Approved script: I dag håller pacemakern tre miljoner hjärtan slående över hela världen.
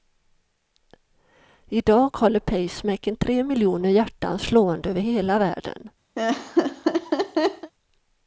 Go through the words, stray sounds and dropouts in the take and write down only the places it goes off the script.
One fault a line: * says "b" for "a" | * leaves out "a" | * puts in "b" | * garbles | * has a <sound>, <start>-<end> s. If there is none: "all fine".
* has a laugh, 6.2-7.7 s